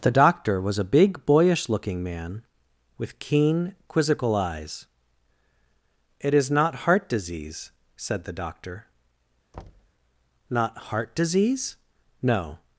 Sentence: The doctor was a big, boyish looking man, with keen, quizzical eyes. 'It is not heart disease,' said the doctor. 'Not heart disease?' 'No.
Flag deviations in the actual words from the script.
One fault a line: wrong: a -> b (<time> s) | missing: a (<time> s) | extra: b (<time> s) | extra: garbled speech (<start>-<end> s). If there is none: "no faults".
no faults